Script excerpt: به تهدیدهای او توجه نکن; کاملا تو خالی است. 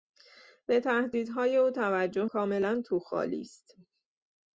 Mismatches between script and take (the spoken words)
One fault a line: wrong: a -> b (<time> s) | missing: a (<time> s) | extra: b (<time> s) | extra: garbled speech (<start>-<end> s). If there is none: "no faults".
missing: نکن (2.2 s)